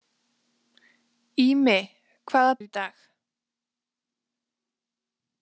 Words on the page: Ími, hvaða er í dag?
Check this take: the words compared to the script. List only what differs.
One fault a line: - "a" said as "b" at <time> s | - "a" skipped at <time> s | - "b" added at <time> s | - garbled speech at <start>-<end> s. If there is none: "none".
none